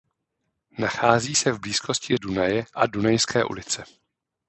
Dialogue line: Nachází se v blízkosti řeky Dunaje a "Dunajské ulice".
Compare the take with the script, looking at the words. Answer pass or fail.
fail